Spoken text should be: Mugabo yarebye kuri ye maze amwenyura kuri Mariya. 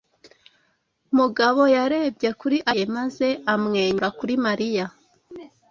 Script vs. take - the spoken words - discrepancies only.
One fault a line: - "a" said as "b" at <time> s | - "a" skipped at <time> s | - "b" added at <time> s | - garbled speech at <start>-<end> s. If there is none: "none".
none